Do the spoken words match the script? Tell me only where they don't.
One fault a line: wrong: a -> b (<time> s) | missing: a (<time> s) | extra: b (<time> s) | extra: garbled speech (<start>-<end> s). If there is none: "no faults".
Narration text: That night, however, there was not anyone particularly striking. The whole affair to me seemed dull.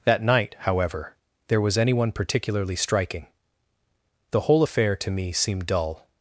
missing: not (1.8 s)